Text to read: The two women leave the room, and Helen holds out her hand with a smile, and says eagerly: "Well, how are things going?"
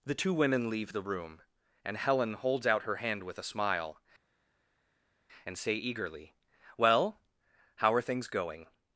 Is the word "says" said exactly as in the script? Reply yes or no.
no